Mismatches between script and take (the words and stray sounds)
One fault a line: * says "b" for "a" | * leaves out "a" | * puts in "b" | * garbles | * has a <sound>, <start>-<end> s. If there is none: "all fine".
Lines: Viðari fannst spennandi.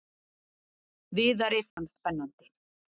* has a dropout, 1.7-1.8 s